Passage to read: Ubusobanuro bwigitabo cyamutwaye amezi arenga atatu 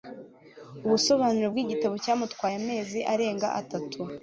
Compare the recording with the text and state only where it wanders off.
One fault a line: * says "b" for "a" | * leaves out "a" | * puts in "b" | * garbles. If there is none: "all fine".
all fine